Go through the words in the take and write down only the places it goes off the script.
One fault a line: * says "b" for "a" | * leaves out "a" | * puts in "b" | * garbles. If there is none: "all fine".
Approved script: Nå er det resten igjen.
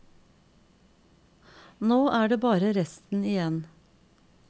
* puts in "bare"